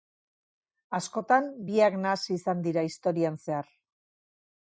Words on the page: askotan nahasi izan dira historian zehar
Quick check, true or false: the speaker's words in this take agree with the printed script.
false